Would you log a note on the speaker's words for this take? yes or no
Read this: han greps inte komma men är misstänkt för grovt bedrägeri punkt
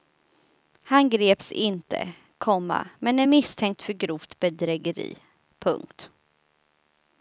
no